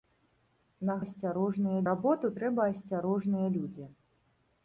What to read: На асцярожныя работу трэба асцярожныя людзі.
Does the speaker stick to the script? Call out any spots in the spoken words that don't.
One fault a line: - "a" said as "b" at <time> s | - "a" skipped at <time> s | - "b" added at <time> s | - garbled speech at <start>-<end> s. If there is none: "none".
none